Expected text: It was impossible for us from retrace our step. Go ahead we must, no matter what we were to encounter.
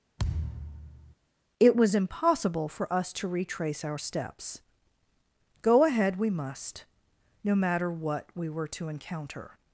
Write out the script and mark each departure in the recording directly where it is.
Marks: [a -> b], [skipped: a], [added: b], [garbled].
It was impossible for us [from -> to] retrace our [step. -> steps] Go ahead we must, no matter what we were to encounter.